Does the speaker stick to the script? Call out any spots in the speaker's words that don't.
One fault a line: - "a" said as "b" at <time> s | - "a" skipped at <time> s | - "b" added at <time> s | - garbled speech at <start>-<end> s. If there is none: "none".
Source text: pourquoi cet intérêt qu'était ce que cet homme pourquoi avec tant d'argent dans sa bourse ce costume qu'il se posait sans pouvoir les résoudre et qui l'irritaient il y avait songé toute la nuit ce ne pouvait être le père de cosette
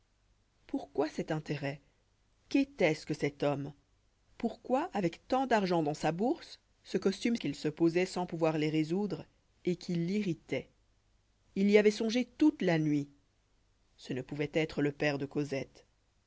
none